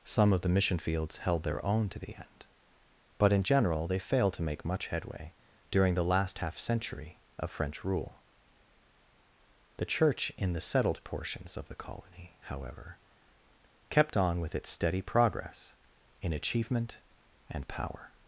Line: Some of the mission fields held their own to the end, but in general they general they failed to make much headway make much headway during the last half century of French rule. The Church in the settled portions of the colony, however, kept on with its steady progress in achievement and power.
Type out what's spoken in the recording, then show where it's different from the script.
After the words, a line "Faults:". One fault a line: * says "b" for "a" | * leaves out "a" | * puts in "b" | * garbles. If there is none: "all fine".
Some of the mission fields held their own to the end, but in general they failed to make much headway during the last half century of French rule. The Church in the settled portions of the colony, however, kept on with its steady progress in achievement and power.
Faults:
* leaves out "general they"
* leaves out "make much headway"